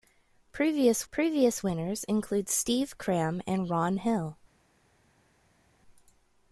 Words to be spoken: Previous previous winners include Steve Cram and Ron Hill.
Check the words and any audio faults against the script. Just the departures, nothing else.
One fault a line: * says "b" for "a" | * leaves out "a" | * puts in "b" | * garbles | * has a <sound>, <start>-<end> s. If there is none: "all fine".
all fine